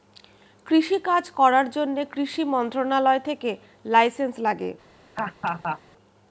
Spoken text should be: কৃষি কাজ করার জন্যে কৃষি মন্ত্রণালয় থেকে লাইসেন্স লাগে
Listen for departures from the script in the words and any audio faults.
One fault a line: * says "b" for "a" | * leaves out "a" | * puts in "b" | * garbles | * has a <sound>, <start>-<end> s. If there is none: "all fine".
* has a laugh, 5.2-5.8 s